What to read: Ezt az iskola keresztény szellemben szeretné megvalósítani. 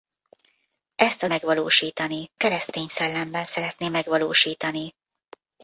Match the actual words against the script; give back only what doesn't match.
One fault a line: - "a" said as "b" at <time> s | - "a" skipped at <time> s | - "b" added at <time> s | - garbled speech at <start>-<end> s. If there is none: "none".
- "iskola" said as "megvalósítani" at 1.2 s